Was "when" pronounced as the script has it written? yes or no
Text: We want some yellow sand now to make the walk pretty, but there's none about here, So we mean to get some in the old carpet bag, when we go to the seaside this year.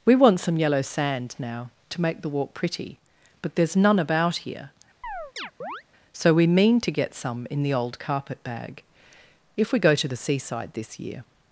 no